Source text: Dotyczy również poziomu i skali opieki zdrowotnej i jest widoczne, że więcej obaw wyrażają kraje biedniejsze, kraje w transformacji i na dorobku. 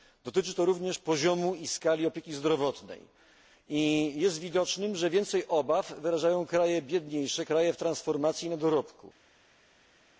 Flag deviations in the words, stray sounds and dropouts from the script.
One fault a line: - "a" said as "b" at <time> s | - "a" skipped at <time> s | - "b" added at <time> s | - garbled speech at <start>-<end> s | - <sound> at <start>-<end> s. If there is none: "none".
- "to" added at 0.5 s